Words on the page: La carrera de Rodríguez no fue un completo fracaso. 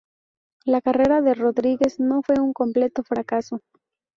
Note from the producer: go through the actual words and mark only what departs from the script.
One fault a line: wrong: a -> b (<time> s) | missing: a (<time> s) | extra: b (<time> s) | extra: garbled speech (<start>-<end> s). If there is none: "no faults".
no faults